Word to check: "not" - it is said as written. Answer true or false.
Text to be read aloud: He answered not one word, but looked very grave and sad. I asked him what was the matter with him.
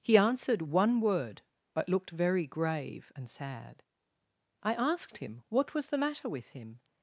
false